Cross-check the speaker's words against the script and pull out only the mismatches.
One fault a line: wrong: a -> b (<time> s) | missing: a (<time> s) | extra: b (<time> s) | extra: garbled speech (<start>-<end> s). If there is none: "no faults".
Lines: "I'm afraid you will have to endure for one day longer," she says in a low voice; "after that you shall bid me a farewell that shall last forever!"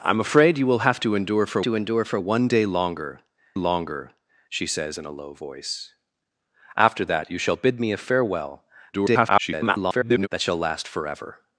extra: to endure for (1.6 s)
extra: longer (3.5 s)
extra: garbled speech (8.9-10.3 s)